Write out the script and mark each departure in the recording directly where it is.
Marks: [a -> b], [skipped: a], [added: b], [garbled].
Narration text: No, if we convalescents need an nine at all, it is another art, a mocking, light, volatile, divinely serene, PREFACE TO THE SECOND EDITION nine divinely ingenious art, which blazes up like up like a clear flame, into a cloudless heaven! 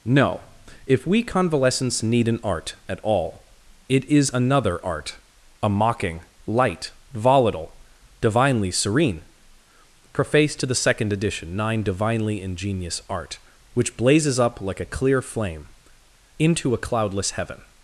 No, if we convalescents need an [nine -> art] at all, it is another art, a mocking, light, volatile, divinely serene, PREFACE TO THE SECOND EDITION nine divinely ingenious art, which blazes up like [skipped: up like] a clear flame, into a cloudless heaven!